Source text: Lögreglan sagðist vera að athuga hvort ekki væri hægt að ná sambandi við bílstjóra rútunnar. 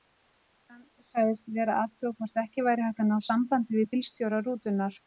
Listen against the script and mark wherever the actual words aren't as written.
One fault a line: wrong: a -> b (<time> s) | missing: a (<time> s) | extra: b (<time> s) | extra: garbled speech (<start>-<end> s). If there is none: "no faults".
no faults